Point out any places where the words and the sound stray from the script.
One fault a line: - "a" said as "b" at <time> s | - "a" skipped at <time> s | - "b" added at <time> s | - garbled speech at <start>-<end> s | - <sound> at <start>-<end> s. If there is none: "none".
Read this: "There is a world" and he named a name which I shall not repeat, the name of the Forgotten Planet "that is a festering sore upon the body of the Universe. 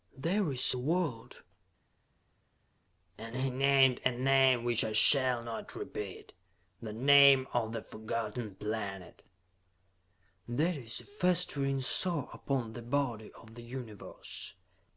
none